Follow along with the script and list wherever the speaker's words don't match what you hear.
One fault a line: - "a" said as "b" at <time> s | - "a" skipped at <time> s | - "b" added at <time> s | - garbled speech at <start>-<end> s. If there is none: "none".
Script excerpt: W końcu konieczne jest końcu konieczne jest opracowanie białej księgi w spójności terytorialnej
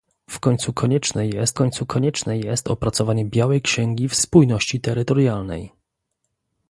none